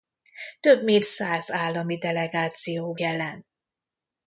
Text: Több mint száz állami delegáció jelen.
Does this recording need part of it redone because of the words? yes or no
no